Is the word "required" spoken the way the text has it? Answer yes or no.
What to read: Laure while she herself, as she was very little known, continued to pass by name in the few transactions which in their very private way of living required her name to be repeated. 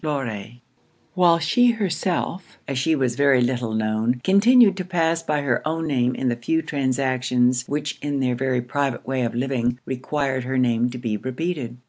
yes